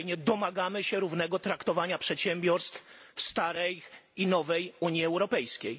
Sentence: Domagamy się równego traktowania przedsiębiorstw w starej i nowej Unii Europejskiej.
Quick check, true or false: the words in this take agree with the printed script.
true